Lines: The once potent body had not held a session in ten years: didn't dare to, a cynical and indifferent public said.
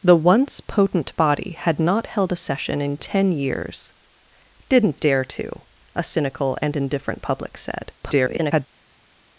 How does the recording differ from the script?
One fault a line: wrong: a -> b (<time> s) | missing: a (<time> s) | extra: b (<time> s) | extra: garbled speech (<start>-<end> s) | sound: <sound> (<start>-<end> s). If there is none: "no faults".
extra: garbled speech (8.0-8.7 s)